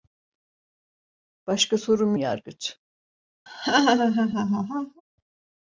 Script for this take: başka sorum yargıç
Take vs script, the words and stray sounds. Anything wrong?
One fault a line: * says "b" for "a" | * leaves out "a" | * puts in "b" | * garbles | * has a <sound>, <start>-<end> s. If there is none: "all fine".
* has a laugh, 3.5-5.0 s